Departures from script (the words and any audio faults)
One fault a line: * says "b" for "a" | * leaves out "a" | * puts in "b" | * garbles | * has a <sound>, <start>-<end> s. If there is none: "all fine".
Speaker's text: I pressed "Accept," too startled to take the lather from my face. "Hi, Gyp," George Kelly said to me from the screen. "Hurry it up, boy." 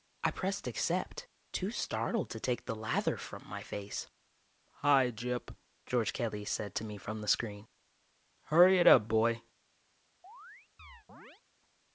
* has a chirp, 10.2-11.4 s